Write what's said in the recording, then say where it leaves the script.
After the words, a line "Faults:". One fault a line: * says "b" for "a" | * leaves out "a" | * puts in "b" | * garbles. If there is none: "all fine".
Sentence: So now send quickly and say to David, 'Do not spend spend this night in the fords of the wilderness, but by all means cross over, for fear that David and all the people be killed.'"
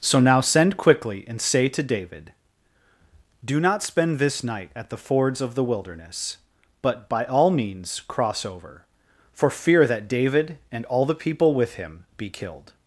So now send quickly and say to David, 'Do not spend this night at the fords of the wilderness, but by all means cross over, for fear that David and all the people with him be killed.'"
Faults:
* leaves out "spend"
* says "at" for "in"
* puts in "with him"